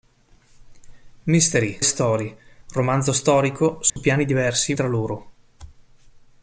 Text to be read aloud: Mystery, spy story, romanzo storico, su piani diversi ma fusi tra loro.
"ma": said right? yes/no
no